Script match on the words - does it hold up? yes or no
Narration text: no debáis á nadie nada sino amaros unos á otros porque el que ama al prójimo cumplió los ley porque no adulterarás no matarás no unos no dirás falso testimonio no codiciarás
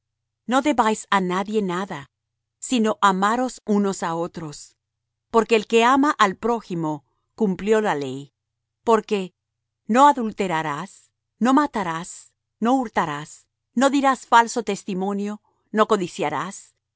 no